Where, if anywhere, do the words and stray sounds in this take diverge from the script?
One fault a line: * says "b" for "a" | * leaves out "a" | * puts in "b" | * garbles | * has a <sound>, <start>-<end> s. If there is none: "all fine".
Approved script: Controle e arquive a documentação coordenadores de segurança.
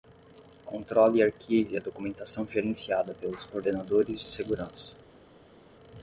* puts in "gerenciada pelos"